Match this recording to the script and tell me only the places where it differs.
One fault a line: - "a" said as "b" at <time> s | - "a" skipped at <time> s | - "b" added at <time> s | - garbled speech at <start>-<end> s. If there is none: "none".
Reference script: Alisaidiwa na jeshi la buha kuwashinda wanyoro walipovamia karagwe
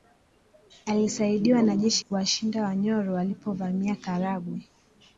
- "la buha" skipped at 2.0 s